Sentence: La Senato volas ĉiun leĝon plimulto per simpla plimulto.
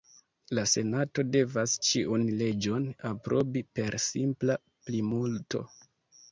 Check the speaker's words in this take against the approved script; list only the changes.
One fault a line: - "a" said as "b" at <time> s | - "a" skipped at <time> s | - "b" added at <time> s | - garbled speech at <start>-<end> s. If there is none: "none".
- "volas" said as "devas" at 1.4 s
- "plimulto" said as "aprobi" at 3.1 s